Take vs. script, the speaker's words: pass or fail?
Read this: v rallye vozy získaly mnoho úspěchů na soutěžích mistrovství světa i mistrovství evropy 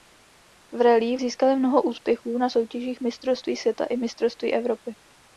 fail